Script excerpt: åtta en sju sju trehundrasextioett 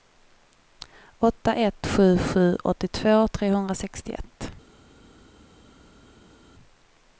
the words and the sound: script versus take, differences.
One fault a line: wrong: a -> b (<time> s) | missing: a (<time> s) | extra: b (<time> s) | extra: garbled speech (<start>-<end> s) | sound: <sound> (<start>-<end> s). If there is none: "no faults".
wrong: en -> ett (1.6 s)
extra: åttiotvå (2.6 s)